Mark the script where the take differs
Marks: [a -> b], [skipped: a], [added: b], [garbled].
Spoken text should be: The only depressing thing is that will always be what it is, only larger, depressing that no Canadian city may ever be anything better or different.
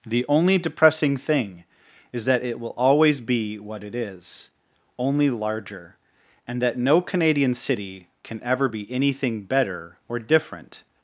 The only depressing thing is that [added: it] will always be what it is, only larger, [depressing -> and] that no Canadian city [may -> can] ever be anything better or different.